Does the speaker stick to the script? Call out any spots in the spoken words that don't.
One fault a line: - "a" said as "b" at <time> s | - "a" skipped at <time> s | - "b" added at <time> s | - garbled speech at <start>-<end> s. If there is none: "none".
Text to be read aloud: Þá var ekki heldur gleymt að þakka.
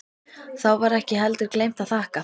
none